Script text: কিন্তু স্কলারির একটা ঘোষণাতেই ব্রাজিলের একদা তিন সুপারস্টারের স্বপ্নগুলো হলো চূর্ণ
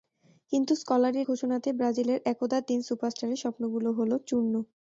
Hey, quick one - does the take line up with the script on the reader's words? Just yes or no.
no